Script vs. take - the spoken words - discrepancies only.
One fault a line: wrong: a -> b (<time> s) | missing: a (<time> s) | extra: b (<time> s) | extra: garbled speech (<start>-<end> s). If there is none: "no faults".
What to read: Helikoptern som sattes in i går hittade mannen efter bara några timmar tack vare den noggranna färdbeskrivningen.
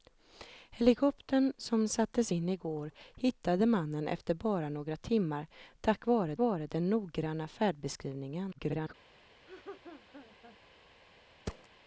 extra: vare (6.4 s)
extra: garbled speech (8.5-8.9 s)